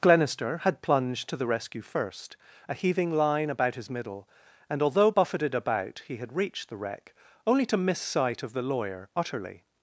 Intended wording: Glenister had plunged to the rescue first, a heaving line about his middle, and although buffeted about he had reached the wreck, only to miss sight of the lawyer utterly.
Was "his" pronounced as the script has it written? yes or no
yes